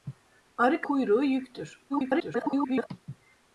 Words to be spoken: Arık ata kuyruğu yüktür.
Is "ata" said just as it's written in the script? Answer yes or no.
no